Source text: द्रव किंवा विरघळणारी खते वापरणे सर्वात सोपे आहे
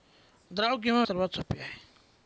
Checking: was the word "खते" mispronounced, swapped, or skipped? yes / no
yes